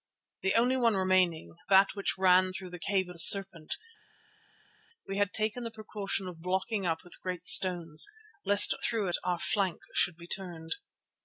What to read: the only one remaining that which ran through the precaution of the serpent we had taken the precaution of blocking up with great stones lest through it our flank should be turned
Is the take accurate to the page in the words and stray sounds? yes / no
no